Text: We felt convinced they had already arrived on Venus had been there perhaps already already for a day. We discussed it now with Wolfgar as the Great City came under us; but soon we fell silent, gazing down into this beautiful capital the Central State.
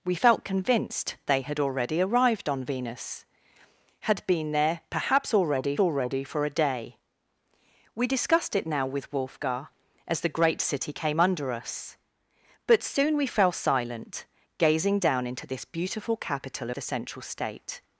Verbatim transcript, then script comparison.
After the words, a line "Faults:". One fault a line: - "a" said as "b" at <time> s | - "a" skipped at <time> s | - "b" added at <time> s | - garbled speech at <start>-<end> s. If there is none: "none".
We felt convinced they had already arrived on Venus had been there perhaps already already for a day. We discussed it now with Wolfgar as the Great City came under us; but soon we fell silent, gazing down into this beautiful capital the Central State.
Faults:
none